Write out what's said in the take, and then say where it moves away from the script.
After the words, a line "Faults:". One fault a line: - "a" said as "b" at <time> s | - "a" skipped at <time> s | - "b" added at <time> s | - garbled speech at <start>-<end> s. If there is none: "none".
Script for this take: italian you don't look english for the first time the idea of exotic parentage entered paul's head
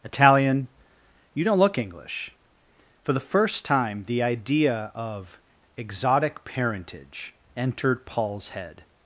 italian you don't look english for the first time the idea of exotic parentage entered paul's head
Faults:
none